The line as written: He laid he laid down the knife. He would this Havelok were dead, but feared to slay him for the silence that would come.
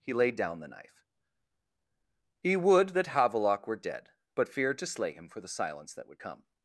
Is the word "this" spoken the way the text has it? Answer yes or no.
no